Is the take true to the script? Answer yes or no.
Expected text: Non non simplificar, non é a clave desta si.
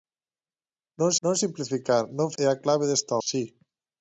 yes